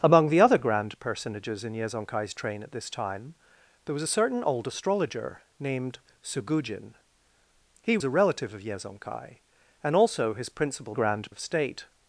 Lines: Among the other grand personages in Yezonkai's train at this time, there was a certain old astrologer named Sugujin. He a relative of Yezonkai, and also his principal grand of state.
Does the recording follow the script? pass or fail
pass